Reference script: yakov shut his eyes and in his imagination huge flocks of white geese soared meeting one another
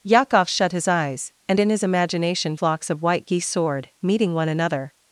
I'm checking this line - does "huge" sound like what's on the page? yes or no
no